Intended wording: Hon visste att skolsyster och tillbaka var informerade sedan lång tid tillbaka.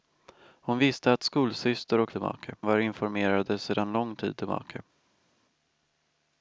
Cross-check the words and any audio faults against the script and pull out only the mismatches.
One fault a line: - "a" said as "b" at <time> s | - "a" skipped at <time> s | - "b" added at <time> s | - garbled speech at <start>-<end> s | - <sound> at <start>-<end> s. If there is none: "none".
none